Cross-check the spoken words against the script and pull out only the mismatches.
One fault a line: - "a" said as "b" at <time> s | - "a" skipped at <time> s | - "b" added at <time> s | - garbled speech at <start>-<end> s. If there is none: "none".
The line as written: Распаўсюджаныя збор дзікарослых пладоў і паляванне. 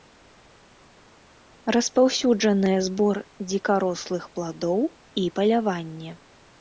none